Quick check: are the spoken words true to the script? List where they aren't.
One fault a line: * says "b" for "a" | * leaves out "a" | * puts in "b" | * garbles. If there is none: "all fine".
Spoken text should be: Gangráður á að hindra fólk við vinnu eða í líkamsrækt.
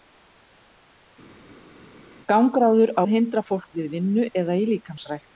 all fine